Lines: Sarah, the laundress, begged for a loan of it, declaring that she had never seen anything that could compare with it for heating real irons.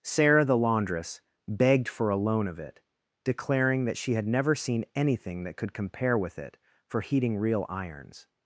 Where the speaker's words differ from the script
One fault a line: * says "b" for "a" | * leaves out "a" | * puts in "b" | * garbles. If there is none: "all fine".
all fine